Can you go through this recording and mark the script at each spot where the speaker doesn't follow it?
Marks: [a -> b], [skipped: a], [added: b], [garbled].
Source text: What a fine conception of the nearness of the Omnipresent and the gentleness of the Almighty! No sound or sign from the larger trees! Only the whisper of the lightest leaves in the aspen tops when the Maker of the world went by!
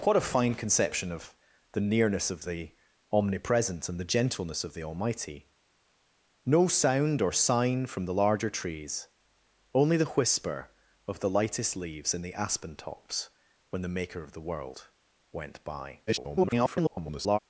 What a fine conception of the nearness of the Omnipresent and the gentleness of the Almighty! No sound or sign from the larger trees! Only the whisper of the lightest leaves in the aspen tops when the Maker of the world went by! [garbled]